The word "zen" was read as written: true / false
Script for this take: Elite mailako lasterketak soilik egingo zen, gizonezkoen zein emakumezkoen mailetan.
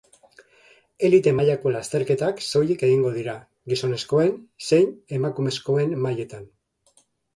false